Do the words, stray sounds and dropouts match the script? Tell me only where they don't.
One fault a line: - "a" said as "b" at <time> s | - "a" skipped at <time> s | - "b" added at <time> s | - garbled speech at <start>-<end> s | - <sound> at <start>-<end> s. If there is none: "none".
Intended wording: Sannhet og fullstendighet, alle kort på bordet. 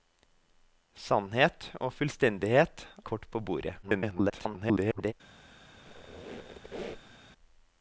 - "alle" skipped at 2.9 s
- garbled speech at 3.8-5.1 s
- squeak at 5.7-7.2 s